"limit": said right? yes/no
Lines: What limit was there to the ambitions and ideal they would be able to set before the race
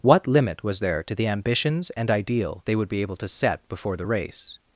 yes